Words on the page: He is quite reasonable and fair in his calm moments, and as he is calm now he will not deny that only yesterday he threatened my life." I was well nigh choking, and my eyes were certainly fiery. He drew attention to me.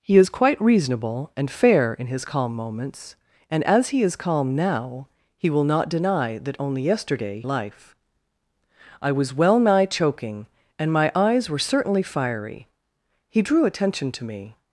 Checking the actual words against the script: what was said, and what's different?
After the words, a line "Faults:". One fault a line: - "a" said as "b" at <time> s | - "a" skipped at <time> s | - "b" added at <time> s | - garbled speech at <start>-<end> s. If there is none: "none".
He is quite reasonable and fair in his calm moments, and as he is calm now he will not deny that only yesterday life." I was well nigh choking, and my eyes were certainly fiery. He drew attention to me.
Faults:
- "he threatened my" skipped at 7.4 s